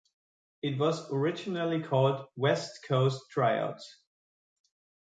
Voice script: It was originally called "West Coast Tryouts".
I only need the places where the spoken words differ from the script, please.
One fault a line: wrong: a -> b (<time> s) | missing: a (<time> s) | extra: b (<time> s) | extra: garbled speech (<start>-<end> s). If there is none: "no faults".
no faults